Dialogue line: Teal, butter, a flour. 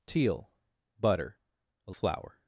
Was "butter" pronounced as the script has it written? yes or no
yes